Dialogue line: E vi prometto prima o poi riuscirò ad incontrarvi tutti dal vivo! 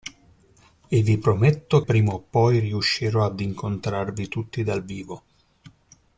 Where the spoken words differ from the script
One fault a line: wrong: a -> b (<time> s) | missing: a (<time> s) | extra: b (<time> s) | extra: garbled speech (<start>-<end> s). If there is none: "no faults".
no faults